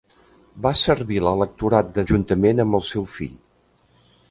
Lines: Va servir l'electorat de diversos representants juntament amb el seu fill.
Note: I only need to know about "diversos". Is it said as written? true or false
false